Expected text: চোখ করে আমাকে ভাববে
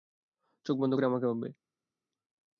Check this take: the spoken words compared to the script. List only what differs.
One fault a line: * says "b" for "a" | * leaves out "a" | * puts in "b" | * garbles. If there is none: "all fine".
* puts in "বন্ধ"